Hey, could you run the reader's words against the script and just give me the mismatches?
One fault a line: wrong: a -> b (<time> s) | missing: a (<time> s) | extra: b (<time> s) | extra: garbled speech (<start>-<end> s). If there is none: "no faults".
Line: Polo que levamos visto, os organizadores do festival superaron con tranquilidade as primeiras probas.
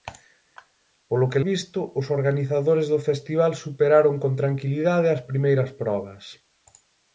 missing: levamos (1.4 s)